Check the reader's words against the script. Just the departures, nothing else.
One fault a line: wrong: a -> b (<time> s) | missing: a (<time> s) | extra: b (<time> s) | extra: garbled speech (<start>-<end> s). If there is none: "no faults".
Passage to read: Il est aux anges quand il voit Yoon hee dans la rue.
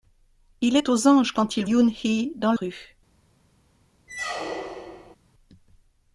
missing: voit (1.7 s)
missing: la (2.5 s)